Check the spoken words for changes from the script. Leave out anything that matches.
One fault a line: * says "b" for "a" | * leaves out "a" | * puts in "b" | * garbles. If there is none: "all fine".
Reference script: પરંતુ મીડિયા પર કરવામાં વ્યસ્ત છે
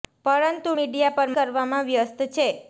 all fine